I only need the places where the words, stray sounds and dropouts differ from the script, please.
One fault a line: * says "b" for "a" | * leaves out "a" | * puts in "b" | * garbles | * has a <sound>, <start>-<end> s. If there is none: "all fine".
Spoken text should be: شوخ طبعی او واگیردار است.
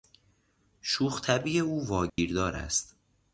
* has a dropout, 2.1-2.2 s